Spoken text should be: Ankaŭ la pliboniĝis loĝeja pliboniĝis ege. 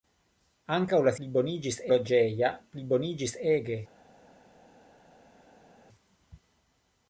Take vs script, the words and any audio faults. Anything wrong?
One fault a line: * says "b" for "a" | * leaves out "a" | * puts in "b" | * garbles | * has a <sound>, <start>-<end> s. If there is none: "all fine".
all fine